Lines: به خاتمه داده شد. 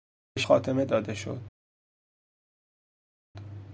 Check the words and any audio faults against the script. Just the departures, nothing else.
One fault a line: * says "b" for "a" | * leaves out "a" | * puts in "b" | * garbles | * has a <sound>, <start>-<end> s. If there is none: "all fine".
all fine